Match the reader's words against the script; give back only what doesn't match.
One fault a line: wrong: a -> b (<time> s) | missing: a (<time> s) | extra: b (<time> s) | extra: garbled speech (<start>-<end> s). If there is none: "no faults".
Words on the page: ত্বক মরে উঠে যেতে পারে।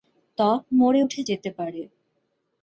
no faults